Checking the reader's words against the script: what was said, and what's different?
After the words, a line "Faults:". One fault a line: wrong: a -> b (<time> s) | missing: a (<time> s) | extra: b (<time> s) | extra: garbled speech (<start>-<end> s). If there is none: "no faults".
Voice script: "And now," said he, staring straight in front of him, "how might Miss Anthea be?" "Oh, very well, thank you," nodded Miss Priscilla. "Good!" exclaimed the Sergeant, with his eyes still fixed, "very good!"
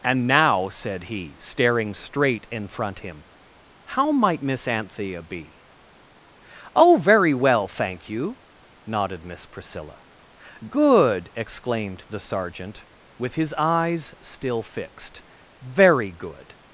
"And now," said he, staring straight in front him, "how might Miss Anthea be?" "Oh, very well, thank you," nodded Miss Priscilla. "Good!" exclaimed the Sergeant, with his eyes still fixed, "very good!"
Faults:
missing: of (3.0 s)